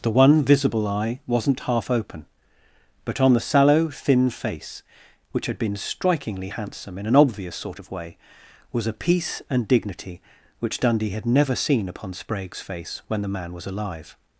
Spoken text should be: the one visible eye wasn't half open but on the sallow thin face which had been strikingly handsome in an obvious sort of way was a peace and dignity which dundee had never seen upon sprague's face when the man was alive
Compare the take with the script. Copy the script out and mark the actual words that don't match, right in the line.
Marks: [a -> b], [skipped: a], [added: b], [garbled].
the one visible eye wasn't half open but on the sallow thin face which had been strikingly handsome in an obvious sort of way was a peace and dignity which dundee had never seen upon sprague's face when the man was alive